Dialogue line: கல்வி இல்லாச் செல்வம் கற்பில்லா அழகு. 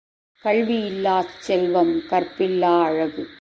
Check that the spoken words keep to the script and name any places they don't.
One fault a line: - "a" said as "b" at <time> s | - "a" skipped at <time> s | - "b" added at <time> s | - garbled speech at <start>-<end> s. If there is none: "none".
none